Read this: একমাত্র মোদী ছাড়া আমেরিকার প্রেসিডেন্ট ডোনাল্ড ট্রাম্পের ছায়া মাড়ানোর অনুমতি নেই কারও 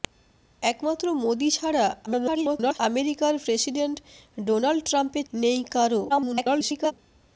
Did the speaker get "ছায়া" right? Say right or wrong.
wrong